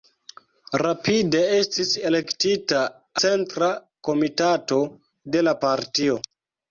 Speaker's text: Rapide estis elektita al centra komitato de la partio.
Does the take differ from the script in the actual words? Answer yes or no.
yes